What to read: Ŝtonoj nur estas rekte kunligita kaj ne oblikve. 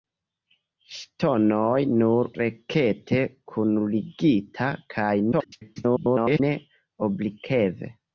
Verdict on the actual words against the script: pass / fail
fail